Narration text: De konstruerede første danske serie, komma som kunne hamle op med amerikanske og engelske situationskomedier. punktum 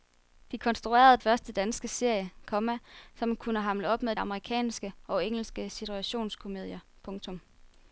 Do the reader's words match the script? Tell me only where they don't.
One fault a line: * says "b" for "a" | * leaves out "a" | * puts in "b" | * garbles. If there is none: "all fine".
all fine